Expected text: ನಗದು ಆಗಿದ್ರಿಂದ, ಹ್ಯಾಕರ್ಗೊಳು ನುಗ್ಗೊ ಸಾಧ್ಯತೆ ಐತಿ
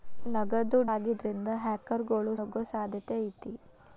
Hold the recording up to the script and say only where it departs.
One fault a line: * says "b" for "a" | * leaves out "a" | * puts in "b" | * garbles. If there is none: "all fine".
all fine